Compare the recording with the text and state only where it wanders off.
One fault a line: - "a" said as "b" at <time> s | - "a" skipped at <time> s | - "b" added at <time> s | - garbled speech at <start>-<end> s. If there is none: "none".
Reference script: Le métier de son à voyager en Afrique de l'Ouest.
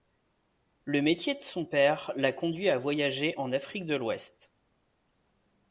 - "père la conduit" added at 1.6 s